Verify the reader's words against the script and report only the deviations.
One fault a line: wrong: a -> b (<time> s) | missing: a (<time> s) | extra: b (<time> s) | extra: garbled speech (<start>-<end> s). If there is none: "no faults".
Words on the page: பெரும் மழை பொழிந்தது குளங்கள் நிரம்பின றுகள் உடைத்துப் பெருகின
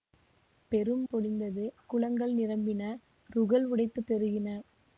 missing: மழை (1.0 s)